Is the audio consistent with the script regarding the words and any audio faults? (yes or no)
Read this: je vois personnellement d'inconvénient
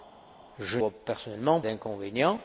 yes